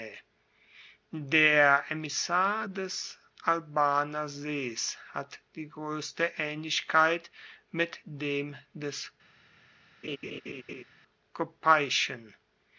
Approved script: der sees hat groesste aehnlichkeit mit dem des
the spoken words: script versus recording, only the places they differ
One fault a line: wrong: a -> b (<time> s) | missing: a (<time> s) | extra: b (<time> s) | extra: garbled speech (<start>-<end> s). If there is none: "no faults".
extra: emissar des albaner (1.9 s)
extra: die (5.5 s)